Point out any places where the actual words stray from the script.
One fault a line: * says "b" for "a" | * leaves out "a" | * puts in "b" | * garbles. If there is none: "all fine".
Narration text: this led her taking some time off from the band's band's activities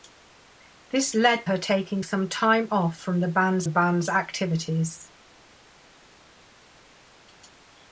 all fine